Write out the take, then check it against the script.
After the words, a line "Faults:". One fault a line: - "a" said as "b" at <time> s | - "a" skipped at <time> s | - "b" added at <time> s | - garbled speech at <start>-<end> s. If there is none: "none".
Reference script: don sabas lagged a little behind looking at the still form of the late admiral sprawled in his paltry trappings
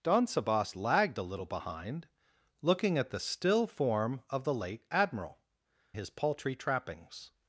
don sabas lagged a little behind looking at the still form of the late admiral his paltry trappings
Faults:
- "sprawled in" skipped at 5.4 s